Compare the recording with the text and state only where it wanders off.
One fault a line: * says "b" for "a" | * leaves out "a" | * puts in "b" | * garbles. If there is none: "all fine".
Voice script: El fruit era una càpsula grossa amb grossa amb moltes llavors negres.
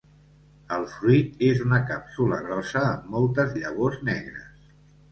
* says "és" for "era"
* leaves out "grossa amb"